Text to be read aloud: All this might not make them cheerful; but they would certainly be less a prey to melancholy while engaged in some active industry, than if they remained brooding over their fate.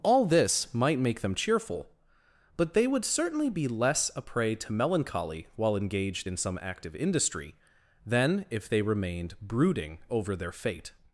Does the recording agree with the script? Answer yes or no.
no